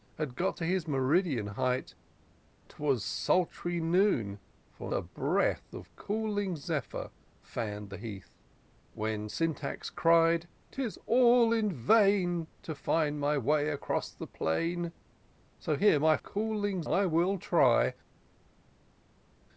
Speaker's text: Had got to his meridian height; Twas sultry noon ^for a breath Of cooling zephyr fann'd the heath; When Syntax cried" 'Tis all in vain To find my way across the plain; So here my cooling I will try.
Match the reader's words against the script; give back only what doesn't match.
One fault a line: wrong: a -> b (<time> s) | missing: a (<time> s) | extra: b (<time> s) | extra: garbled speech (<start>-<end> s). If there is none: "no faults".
no faults